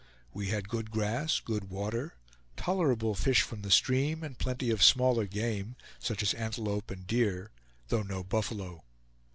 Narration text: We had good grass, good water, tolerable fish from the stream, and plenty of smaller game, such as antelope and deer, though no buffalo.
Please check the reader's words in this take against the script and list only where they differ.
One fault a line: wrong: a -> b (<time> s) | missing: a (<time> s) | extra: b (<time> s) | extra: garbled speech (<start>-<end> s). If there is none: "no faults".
no faults